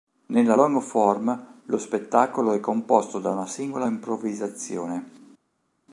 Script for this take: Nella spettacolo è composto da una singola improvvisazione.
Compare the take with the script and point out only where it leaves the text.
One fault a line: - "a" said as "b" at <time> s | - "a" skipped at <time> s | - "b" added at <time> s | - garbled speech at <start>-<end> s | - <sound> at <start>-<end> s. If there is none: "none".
- "long form lo" added at 0.5 s